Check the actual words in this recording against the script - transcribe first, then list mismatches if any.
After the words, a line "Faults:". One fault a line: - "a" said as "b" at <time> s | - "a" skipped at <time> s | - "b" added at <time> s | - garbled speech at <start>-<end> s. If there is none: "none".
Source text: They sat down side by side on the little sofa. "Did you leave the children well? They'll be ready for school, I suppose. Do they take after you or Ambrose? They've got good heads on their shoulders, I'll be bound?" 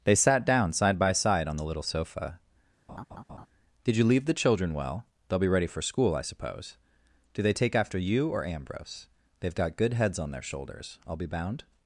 They sat down side by side on the little sofa. "Did you leave the children well? They'll be ready for school, I suppose. Do they take after you or Ambrose? They've got good heads on their shoulders, I'll be bound?"
Faults:
none